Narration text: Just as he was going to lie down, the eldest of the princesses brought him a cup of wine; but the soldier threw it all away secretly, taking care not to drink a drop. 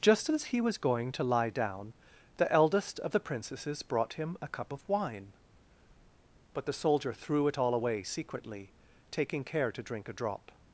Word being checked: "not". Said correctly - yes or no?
no